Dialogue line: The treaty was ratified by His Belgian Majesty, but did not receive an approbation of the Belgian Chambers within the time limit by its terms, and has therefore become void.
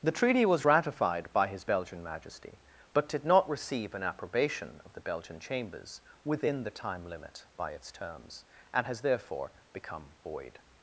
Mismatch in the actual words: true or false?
false